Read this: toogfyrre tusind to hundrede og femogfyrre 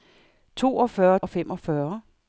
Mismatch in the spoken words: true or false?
true